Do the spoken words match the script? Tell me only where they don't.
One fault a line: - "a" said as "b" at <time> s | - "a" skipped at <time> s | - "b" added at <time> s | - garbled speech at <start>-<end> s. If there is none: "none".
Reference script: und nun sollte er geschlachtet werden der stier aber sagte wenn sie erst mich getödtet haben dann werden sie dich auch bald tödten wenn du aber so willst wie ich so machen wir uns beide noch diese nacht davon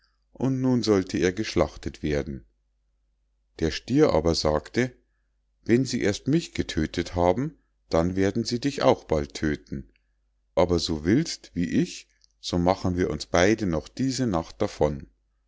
- "wenn du" skipped at 9.9 s